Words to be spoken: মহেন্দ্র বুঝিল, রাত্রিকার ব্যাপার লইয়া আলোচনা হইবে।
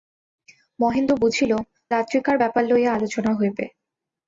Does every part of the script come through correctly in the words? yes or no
yes